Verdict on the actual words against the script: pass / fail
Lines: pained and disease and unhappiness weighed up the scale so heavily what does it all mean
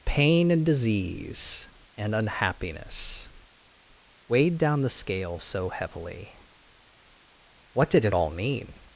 fail